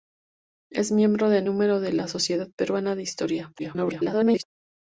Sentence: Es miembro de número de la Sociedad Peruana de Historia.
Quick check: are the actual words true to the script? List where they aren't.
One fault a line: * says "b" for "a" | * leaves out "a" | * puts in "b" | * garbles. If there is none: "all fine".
* garbles